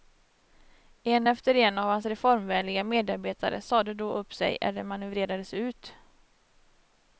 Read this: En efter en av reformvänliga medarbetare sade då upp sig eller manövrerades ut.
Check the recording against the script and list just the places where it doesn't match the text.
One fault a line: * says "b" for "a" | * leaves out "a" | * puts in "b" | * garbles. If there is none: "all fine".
* puts in "hans"